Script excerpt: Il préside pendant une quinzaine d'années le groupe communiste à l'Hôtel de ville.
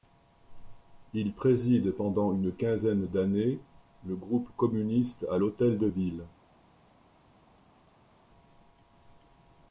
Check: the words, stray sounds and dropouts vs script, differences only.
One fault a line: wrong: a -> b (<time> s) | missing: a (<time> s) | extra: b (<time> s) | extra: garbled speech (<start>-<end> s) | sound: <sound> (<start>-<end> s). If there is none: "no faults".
no faults